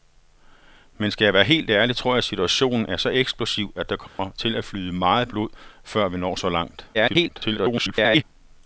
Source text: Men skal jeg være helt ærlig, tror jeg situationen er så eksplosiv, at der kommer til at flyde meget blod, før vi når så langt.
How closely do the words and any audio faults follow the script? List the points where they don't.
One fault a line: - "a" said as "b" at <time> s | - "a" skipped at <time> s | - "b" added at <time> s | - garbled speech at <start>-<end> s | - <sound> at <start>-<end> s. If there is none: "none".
- dropout at 4.1-4.2 s
- garbled speech at 6.9-8.2 s